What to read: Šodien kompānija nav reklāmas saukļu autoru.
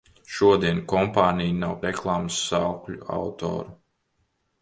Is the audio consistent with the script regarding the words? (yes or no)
yes